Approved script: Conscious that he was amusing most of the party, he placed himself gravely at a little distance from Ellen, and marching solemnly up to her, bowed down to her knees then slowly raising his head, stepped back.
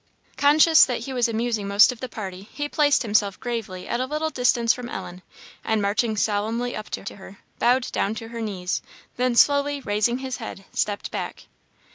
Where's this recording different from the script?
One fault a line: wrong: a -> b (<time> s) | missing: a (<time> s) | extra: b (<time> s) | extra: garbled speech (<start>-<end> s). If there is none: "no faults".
extra: to (7.0 s)